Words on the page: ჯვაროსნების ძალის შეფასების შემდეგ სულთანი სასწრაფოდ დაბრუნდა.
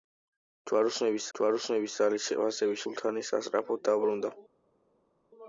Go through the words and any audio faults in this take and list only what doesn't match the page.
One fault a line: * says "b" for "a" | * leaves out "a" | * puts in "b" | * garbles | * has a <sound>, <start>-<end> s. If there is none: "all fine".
* puts in "ჯვაროსნების"
* leaves out "შემდეგ"